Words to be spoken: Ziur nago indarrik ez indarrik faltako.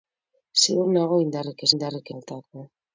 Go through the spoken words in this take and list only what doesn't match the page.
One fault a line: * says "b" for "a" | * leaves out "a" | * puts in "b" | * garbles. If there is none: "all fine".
all fine